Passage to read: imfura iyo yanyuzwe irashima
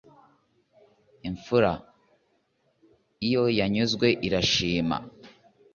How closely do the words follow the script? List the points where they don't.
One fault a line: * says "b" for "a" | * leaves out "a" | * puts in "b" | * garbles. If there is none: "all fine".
all fine